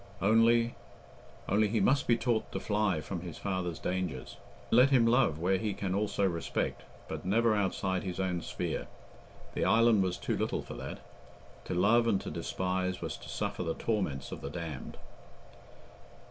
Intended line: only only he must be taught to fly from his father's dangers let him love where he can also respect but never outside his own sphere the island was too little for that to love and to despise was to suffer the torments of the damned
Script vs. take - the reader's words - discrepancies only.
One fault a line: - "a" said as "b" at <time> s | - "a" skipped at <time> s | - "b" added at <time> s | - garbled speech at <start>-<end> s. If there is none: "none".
none